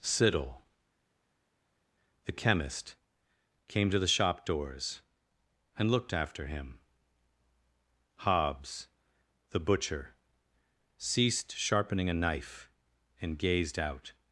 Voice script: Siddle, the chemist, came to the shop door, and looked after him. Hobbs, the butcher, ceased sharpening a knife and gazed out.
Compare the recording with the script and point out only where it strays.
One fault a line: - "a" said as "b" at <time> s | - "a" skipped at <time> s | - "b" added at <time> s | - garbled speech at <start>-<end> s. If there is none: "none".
- "door" said as "doors" at 4.4 s